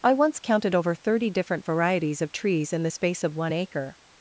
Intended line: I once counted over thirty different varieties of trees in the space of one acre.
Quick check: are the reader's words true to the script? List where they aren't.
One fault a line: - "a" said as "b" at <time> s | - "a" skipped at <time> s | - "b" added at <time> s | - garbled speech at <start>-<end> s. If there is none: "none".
none